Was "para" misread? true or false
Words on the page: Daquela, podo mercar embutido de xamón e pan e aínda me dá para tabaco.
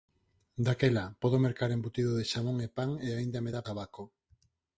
true